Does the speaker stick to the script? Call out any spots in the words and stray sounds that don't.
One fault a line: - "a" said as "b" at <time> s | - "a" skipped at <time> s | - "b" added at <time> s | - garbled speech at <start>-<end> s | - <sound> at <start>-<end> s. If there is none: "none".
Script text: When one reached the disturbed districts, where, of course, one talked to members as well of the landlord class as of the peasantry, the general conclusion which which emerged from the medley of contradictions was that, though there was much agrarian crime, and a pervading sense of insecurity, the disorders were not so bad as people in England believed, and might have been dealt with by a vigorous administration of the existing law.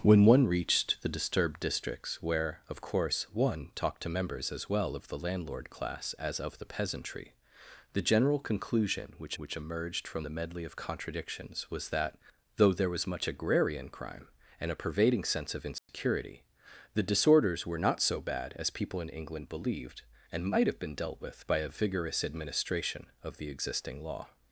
- dropout at 15.8-15.9 s